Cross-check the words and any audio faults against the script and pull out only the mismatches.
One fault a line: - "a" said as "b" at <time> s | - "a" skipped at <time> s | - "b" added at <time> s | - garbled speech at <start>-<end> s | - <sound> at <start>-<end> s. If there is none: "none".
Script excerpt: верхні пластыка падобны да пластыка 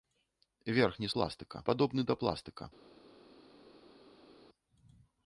none